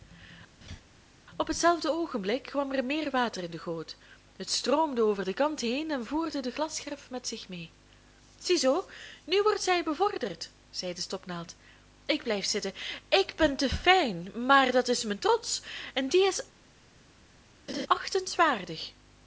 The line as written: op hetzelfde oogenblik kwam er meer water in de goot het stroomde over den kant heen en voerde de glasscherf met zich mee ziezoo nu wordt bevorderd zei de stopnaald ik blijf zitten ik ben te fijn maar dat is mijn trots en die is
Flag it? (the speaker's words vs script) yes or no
yes